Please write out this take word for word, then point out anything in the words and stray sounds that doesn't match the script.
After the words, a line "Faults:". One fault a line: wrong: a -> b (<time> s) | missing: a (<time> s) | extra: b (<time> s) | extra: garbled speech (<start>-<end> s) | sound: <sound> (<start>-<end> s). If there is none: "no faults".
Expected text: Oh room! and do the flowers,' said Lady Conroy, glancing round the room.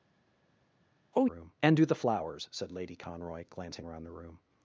Oh room! and do the flowers,' said Lady Conroy, glancing round the room.
Faults:
no faults